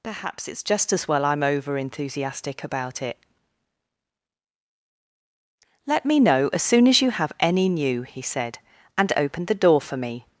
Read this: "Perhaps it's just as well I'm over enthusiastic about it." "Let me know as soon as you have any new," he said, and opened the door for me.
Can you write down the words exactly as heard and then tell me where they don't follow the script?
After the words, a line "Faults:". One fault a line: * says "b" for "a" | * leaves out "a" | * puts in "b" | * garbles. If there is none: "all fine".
"Perhaps it's just as well I'm over enthusiastic about it." "Let me know as soon as you have any new," he said, and opened the door for me.
Faults:
all fine